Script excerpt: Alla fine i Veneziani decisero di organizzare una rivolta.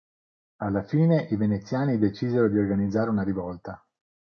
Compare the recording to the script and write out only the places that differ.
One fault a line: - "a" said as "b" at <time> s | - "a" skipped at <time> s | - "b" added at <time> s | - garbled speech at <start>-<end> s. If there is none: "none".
none